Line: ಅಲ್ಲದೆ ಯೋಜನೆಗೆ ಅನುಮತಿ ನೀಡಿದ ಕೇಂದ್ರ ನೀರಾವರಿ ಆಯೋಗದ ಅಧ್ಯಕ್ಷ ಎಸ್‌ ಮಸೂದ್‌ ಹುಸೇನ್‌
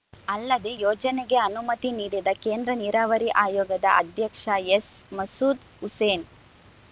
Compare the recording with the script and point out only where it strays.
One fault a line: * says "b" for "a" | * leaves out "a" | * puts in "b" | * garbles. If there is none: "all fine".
all fine